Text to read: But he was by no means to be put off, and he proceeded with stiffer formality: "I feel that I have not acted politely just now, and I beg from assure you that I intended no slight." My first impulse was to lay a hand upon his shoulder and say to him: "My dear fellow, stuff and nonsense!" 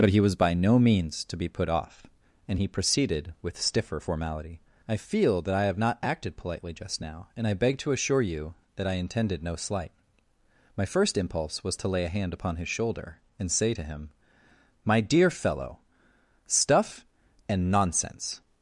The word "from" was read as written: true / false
false